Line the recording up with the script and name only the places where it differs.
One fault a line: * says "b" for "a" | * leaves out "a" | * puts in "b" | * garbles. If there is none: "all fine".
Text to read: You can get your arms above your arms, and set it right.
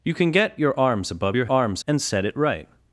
all fine